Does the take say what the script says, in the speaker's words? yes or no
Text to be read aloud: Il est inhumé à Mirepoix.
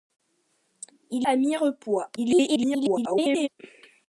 no